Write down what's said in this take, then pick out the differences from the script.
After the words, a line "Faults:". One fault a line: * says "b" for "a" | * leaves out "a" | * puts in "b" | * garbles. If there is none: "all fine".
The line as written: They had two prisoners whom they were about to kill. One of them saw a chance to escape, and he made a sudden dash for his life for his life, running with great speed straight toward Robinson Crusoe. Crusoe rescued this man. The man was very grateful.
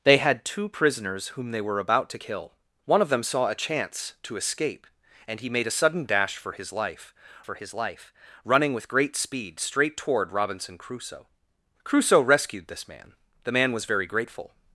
They had two prisoners whom they were about to kill. One of them saw a chance to escape, and he made a sudden dash for his life for his life, running with great speed straight toward Robinson Crusoe. Crusoe rescued this man. The man was very grateful.
Faults:
all fine